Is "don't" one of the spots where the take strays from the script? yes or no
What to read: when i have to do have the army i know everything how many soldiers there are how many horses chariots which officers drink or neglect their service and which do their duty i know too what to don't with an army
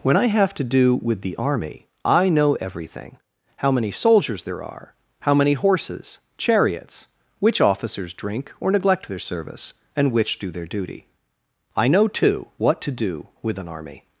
yes